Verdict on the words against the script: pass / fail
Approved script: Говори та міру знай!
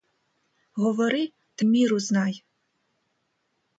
pass